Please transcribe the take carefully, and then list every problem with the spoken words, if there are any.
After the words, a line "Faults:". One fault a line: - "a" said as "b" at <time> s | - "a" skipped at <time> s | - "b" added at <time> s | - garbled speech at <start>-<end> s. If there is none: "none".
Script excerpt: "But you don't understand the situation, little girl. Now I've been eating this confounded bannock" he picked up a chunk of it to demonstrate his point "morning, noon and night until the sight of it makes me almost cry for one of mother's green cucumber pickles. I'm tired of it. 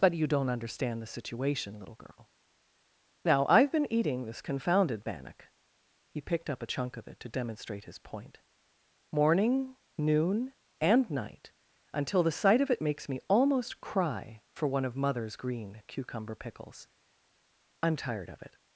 "But you don't understand the situation, little girl. Now I've been eating this confounded bannock" he picked up a chunk of it to demonstrate his point "morning, noon and night until the sight of it makes me almost cry for one of mother's green cucumber pickles. I'm tired of it.
Faults:
none